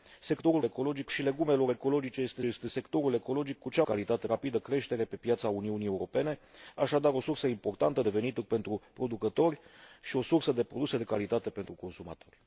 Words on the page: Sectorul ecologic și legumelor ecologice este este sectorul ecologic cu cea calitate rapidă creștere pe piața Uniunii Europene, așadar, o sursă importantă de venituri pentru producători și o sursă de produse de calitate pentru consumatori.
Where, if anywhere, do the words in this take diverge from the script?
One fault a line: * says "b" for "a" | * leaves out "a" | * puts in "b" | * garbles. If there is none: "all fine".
all fine